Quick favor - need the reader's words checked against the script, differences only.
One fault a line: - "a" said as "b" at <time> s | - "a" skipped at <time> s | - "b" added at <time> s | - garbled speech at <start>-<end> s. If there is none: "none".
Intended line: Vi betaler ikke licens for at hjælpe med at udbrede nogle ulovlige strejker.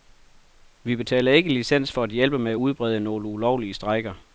none